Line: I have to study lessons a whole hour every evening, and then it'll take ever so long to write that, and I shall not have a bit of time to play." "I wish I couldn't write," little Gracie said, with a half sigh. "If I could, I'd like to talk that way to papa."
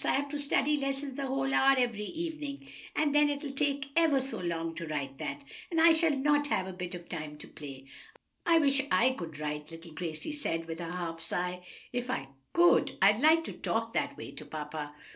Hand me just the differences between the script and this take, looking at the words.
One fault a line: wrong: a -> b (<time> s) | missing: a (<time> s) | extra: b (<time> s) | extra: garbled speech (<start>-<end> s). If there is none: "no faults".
wrong: couldn't -> could (9.1 s)